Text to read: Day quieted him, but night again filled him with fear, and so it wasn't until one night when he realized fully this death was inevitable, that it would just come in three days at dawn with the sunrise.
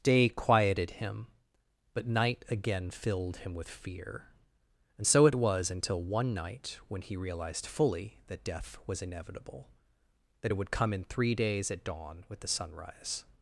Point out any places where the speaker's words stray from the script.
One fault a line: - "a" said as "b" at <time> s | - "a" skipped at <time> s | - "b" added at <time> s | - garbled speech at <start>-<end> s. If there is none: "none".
- "wasn't" said as "was" at 5.3 s
- "this" said as "that" at 8.3 s
- "just" skipped at 10.7 s